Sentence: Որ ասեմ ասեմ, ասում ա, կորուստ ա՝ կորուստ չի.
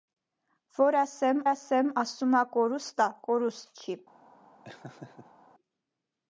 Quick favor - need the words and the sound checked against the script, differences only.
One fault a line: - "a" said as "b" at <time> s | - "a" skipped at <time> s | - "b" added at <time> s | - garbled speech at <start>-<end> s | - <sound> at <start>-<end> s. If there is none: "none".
- laugh at 4.6-5.4 s